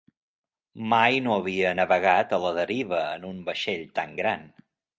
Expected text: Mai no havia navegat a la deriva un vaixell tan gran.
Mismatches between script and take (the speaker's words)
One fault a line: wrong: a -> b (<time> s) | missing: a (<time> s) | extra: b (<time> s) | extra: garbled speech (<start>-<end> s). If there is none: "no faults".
extra: en (3.2 s)